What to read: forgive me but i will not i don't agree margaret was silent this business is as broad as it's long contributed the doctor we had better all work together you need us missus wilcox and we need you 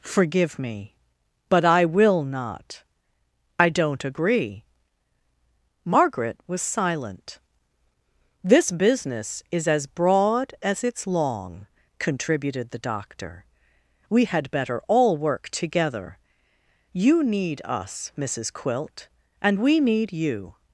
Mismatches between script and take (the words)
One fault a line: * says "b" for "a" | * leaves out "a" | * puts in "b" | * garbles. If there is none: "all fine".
* says "quilt" for "wilcox"